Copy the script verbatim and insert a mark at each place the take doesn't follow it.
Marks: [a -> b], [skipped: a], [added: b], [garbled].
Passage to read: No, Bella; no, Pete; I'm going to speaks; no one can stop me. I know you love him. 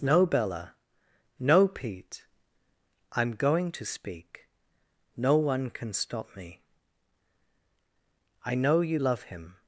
No, Bella; no, Pete; I'm going to [speaks; -> speak] no one can stop me. I know you love him.